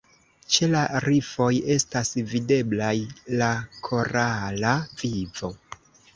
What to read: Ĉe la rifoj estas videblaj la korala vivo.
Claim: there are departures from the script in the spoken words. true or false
false